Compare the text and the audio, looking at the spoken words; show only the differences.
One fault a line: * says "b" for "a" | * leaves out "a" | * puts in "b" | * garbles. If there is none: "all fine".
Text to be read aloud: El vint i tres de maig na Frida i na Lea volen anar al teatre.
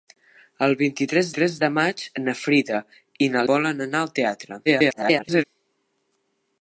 * puts in "tres"
* leaves out "Lea"
* garbles